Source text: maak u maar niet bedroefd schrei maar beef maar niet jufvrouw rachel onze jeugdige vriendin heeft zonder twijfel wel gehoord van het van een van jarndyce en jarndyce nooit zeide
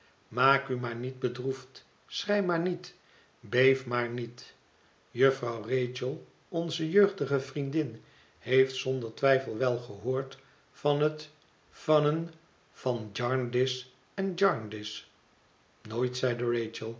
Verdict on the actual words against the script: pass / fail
fail